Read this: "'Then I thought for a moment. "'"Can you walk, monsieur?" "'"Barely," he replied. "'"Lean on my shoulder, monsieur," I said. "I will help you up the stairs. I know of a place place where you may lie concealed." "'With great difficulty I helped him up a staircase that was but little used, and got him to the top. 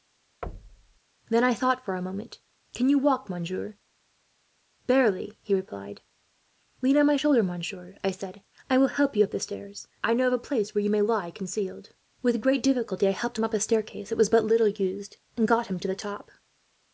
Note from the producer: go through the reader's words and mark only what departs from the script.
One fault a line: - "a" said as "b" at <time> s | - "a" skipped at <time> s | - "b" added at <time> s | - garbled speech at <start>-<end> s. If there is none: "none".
- "place" skipped at 10.7 s